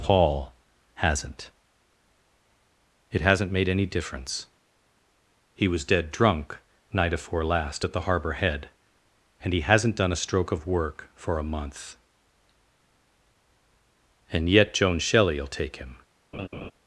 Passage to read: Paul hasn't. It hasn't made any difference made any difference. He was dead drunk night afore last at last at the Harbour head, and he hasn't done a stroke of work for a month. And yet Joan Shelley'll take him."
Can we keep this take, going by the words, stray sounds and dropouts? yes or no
no